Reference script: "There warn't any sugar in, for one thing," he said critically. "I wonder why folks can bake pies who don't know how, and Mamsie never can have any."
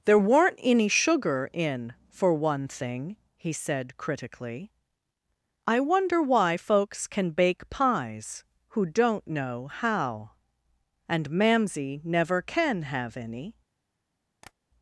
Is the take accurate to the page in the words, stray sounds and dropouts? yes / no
no